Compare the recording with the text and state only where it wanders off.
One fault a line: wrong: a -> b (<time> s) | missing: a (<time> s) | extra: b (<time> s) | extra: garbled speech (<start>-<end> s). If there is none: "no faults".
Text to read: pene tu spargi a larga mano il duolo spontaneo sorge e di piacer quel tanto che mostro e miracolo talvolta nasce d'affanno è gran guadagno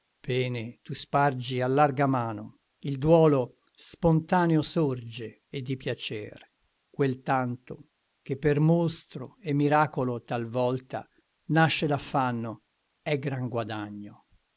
extra: per (8.4 s)